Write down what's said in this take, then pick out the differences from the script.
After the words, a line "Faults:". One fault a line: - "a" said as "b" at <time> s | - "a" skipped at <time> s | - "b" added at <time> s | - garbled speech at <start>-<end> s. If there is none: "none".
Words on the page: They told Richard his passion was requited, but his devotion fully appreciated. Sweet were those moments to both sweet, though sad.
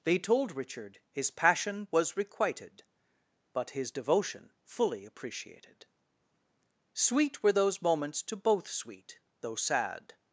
They told Richard his passion was requited, but his devotion fully appreciated. Sweet were those moments to both sweet, though sad.
Faults:
none